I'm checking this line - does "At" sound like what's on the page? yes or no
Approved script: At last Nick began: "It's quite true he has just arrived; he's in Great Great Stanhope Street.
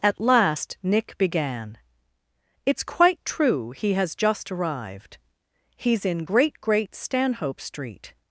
yes